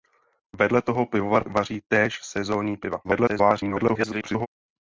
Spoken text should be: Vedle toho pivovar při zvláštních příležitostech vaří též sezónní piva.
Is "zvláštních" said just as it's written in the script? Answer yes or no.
no